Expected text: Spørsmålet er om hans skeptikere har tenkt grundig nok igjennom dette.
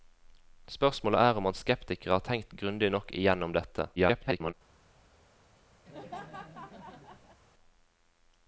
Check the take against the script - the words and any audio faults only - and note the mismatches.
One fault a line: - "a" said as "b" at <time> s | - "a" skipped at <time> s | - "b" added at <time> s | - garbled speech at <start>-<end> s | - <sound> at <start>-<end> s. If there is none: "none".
- garbled speech at 4.0-4.5 s
- laugh at 5.9-7.4 s